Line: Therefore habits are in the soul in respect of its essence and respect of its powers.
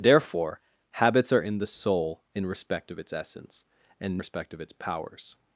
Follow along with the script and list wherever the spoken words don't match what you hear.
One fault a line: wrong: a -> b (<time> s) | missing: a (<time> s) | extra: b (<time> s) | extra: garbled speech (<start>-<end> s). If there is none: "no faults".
no faults